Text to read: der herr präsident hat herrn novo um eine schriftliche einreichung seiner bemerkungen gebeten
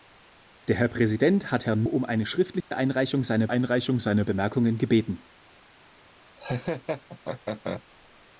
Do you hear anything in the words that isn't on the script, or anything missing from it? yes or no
yes